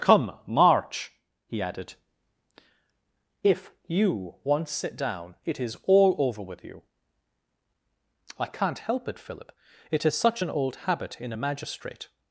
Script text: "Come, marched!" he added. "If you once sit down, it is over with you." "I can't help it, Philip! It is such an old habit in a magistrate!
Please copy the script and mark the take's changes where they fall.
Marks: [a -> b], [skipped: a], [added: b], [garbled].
"Come, [marched!" -> march] he added. "If you once sit down, it is [added: all] over with you." "I can't help it, Philip! It is such an old habit in a magistrate!